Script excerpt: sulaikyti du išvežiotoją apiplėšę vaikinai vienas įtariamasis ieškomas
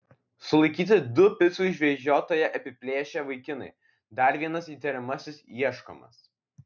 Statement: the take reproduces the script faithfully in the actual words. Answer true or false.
false